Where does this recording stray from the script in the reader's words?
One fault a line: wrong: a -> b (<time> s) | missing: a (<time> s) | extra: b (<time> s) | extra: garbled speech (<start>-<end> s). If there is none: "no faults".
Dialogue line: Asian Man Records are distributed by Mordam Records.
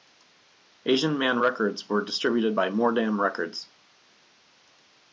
wrong: are -> were (1.9 s)